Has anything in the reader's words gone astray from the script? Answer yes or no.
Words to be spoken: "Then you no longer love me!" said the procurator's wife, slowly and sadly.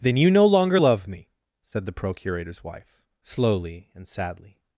no